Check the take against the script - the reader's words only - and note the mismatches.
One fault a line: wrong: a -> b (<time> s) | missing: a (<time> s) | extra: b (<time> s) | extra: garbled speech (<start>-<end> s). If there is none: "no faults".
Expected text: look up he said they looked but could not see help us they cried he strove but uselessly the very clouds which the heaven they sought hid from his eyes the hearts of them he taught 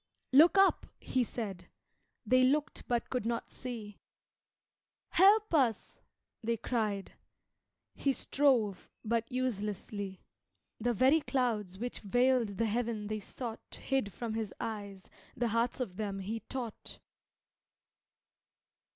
extra: veiled (12.0 s)